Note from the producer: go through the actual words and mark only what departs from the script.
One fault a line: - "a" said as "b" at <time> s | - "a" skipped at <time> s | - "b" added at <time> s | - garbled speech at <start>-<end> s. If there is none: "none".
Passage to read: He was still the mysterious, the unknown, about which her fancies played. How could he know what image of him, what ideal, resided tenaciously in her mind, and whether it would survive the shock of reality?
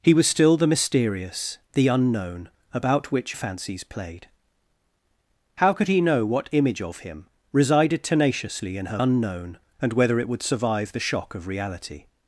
- "her" skipped at 3.4 s
- "what ideal" skipped at 7.3 s
- "mind" said as "unknown" at 9.0 s